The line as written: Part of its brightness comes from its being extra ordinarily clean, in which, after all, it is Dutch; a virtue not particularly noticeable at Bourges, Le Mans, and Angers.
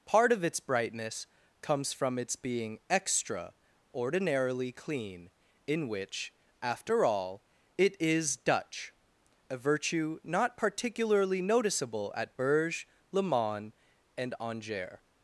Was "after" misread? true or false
false